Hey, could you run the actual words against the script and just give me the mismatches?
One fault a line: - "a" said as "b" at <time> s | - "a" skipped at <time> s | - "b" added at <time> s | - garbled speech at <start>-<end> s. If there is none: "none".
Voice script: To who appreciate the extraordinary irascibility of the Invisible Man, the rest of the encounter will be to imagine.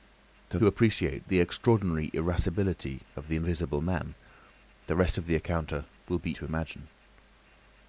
none